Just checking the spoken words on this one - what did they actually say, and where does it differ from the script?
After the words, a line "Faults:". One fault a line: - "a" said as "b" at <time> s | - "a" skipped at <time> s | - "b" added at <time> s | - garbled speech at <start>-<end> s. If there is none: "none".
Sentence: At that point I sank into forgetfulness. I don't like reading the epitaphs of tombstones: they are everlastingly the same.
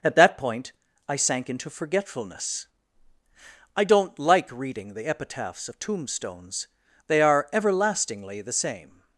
At that point I sank into forgetfulness. I don't like reading the epitaphs of tombstones: they are everlastingly the same.
Faults:
none